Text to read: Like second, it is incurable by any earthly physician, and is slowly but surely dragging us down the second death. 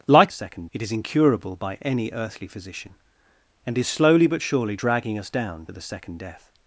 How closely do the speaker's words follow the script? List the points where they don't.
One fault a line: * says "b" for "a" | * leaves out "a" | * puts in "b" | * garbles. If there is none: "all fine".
all fine